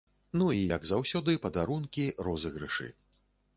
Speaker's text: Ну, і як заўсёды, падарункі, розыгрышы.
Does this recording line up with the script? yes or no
yes